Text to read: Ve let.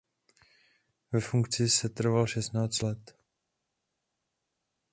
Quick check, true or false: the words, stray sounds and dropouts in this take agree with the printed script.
false